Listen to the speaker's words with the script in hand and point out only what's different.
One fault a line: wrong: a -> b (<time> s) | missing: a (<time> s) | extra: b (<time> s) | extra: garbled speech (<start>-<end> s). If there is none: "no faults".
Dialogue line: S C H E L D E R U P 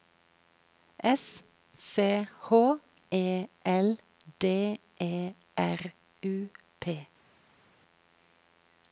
no faults